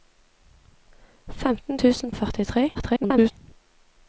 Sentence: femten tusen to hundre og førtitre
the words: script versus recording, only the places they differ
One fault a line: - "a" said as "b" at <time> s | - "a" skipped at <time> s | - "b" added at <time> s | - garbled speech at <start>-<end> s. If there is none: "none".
- "to hundre" skipped at 2.1 s
- garbled speech at 2.7-3.3 s